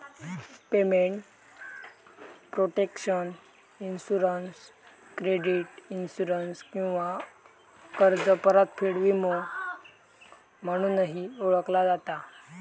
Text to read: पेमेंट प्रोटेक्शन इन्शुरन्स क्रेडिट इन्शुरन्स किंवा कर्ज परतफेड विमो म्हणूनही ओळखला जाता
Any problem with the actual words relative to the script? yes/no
no